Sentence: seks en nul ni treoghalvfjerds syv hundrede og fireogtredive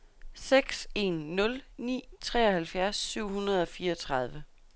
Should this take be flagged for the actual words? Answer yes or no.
no